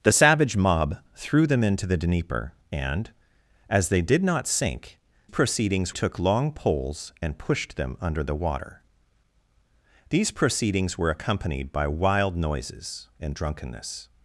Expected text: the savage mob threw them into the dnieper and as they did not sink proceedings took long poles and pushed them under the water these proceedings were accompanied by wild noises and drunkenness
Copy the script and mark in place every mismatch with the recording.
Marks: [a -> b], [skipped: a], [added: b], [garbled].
the savage mob threw them into the dnieper and as they did not sink proceedings took long poles and pushed them under the water these proceedings were accompanied by wild noises and drunkenness